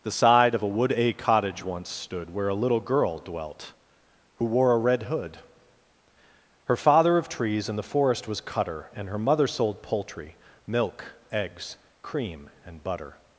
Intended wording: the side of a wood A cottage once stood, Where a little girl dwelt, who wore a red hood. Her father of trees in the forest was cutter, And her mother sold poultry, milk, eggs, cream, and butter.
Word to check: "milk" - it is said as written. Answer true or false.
true